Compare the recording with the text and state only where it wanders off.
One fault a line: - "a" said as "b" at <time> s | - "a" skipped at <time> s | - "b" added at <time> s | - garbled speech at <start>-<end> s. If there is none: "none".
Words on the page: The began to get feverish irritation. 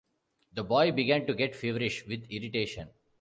- "boy" added at 0.6 s
- "with" added at 2.1 s